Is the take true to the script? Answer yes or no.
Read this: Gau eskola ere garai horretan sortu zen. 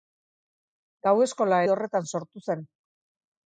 no